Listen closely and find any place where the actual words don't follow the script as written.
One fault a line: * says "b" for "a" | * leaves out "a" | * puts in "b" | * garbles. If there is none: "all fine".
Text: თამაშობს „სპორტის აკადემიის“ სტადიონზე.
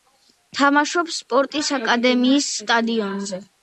all fine